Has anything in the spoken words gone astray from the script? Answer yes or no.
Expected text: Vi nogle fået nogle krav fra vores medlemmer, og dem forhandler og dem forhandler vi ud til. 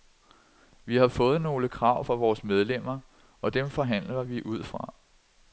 yes